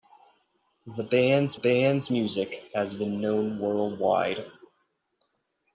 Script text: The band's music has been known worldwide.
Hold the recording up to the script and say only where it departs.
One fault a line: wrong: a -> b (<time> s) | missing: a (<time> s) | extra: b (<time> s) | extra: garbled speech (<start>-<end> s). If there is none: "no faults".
extra: band's (1.5 s)